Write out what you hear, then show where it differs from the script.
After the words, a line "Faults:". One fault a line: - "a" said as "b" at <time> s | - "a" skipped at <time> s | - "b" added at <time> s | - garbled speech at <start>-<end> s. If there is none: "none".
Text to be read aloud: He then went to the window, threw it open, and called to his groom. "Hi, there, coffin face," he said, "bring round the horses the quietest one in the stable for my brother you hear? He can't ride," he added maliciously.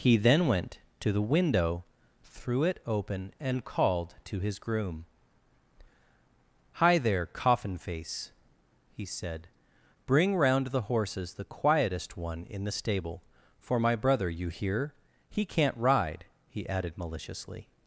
He then went to the window, threw it open, and called to his groom. "Hi, there, coffin face," he said, "bring round the horses the quietest one in the stable for my brother you hear? He can't ride," he added maliciously.
Faults:
none